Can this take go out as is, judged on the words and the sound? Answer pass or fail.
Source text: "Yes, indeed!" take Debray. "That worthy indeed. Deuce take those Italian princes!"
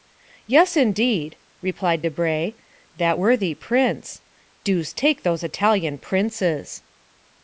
fail